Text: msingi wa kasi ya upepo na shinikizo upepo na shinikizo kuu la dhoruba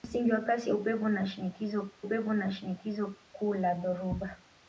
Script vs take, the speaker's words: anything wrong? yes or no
no